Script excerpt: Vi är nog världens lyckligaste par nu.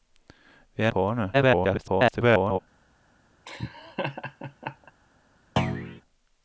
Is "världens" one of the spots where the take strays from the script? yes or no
yes